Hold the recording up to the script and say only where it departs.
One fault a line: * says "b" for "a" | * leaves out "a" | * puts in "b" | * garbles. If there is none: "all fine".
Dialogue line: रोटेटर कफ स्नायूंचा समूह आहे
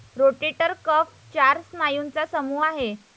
* puts in "चार"